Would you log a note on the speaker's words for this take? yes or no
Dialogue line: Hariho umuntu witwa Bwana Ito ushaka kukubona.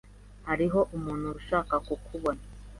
yes